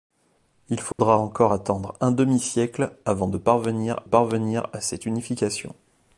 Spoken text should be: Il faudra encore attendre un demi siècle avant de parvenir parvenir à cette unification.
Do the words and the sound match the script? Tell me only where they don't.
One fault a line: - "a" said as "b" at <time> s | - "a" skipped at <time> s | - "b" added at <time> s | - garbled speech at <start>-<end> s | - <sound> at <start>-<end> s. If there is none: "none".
- dropout at 0.9-1.0 s